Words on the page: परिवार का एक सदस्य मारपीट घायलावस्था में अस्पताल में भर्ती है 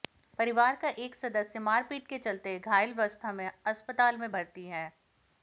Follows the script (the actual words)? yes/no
no